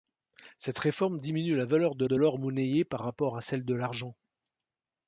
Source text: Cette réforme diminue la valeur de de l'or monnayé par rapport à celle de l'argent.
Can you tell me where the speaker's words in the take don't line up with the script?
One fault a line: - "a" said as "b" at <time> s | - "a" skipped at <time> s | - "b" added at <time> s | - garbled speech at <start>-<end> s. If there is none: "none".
none